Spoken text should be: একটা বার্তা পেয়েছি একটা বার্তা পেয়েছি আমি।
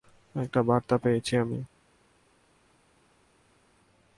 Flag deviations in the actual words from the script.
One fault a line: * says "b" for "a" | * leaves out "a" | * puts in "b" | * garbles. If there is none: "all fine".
* leaves out "একটা বার্তা পেয়েছি"